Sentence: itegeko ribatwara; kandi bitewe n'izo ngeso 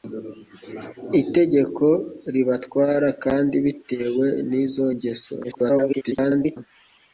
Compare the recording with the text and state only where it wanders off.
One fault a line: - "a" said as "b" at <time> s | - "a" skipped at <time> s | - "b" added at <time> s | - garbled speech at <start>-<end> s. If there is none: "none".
- garbled speech at 5.4-6.6 s